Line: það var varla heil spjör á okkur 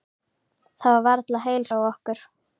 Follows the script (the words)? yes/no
no